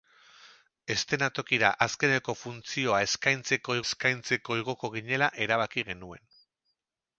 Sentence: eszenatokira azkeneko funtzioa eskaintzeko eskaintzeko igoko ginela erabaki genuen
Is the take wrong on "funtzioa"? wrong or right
right